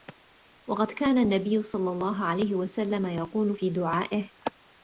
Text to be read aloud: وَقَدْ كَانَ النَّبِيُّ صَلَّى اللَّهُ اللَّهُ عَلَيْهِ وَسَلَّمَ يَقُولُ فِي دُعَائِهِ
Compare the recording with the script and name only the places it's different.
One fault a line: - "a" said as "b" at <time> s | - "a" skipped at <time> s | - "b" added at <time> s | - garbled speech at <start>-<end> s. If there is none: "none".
- "اللَّهُ" skipped at 2.2 s